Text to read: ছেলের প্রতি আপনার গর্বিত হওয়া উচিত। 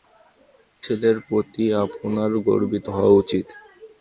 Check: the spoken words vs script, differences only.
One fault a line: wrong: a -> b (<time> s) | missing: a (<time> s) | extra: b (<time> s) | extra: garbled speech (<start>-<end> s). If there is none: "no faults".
no faults